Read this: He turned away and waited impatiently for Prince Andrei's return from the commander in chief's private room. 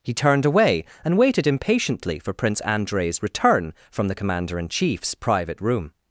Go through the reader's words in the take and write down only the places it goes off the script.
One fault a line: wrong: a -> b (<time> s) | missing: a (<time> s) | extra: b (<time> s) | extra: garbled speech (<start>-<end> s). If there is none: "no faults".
no faults